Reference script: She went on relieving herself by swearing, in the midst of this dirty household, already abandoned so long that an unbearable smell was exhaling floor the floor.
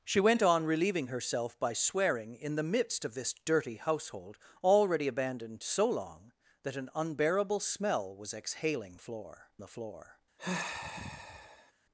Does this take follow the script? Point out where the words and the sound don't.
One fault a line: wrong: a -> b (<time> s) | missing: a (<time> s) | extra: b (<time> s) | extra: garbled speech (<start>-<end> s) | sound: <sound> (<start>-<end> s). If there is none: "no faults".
sound: sigh (10.4-11.7 s)